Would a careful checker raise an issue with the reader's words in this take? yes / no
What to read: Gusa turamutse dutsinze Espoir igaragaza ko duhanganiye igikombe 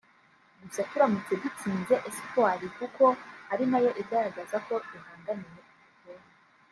yes